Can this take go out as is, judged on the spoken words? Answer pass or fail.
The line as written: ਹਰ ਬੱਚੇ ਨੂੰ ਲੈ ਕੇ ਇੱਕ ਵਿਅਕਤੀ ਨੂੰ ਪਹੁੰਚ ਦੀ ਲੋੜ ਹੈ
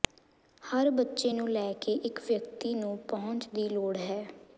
pass